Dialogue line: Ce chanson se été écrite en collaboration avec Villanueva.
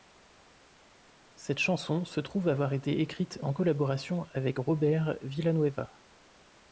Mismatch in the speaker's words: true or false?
true